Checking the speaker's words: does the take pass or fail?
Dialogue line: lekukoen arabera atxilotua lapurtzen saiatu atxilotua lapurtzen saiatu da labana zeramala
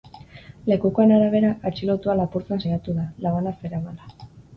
fail